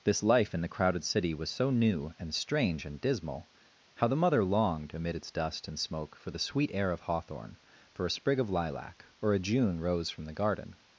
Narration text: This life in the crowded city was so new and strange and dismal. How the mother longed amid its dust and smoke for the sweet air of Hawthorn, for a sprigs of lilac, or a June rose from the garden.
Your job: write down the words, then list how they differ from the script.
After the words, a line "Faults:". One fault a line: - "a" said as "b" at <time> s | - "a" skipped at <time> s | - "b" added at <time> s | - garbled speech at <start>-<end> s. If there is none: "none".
This life in the crowded city was so new and strange and dismal. How the mother longed amid its dust and smoke for the sweet air of Hawthorn, for a sprig of lilac, or a June rose from the garden.
Faults:
- "sprigs" said as "sprig" at 8.1 s